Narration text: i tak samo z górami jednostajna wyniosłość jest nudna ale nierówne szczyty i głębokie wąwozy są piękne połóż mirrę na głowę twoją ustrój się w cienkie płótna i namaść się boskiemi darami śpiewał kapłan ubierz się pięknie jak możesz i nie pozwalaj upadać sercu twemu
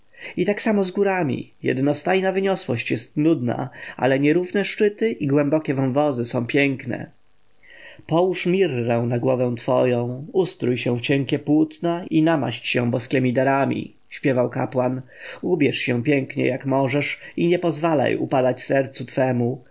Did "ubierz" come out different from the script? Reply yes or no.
no